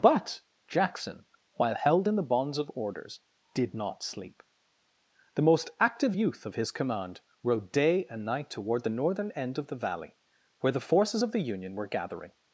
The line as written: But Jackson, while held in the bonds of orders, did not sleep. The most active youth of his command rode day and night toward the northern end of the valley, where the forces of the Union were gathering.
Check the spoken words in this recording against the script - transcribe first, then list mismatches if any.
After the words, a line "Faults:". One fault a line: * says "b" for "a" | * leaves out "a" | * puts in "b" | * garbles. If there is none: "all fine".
But Jackson, while held in the bonds of orders, did not sleep. The most active youth of his command rode day and night toward the northern end of the valley, where the forces of the Union were gathering.
Faults:
all fine